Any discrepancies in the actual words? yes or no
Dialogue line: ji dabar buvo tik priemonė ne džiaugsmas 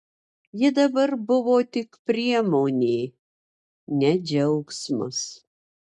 no